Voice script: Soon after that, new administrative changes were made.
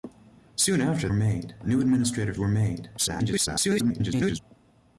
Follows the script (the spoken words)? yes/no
no